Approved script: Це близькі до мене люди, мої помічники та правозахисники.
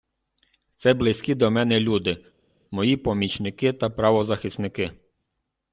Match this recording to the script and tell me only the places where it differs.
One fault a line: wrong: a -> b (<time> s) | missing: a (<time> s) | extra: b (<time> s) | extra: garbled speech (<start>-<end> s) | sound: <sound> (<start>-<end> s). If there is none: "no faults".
no faults